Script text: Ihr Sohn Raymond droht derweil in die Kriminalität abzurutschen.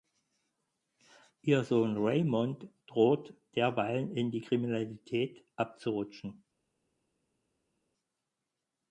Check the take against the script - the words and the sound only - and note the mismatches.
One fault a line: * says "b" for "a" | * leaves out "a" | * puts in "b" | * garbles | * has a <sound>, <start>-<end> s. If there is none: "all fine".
all fine